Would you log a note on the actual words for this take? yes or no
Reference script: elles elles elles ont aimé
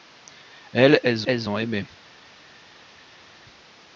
no